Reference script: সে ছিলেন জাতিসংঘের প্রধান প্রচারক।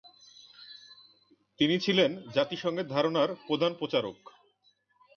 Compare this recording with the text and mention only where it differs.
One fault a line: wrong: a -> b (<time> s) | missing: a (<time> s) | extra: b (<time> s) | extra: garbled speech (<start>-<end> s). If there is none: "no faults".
wrong: সে -> তিনি (1.6 s)
extra: ধারণার (2.9 s)